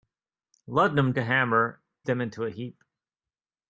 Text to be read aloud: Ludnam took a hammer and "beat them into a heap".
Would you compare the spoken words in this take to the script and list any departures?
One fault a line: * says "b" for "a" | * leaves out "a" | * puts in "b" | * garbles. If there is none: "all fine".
* leaves out "took"
* leaves out "and beat"